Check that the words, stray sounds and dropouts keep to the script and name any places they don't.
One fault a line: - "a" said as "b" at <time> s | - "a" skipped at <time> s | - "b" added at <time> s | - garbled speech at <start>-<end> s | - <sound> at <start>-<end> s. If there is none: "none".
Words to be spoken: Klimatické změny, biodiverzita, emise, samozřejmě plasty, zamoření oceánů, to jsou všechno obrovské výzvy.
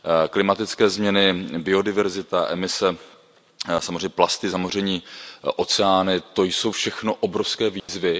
- dropout at 7.8-7.9 s